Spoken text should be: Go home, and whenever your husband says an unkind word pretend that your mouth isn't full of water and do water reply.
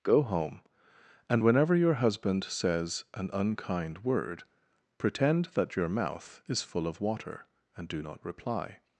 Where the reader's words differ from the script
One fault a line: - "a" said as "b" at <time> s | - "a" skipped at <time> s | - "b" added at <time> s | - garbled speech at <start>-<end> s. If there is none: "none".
- "isn't" said as "is" at 6.5 s
- "water" said as "not" at 8.0 s